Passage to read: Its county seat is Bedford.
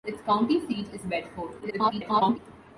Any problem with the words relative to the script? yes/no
yes